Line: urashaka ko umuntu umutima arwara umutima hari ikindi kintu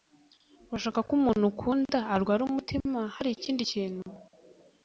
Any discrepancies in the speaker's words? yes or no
yes